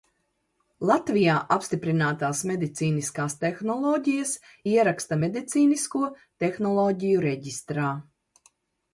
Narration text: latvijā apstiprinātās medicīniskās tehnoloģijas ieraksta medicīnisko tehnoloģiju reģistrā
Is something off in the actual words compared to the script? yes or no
no